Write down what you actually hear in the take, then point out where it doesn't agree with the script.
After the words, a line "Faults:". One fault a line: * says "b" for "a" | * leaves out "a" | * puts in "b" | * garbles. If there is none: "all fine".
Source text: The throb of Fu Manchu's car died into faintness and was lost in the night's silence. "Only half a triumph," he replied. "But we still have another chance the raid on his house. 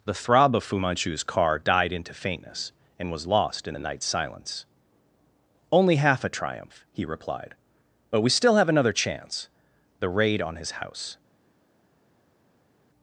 The throb of Fu Manchu's car died into faintness and was lost in the night's silence. "Only half a triumph," he replied. "But we still have another chance the raid on his house.
Faults:
all fine